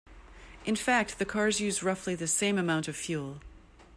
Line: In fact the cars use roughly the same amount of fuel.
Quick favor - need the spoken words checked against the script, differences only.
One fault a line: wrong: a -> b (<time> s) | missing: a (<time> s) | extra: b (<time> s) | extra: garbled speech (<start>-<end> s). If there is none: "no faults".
no faults